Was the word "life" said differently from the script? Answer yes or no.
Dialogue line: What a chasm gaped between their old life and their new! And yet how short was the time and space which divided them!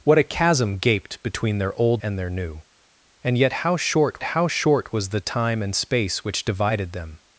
yes